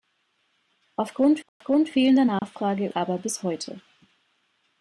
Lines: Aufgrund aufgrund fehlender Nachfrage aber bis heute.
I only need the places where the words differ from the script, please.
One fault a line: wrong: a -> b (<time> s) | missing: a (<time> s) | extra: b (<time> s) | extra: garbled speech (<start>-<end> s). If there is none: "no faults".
no faults